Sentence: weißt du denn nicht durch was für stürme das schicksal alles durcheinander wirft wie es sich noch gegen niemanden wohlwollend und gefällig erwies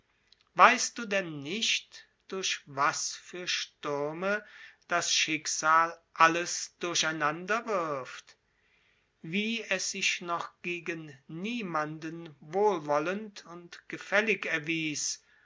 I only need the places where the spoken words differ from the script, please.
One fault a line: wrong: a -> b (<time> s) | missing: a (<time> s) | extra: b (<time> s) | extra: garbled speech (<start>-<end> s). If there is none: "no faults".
no faults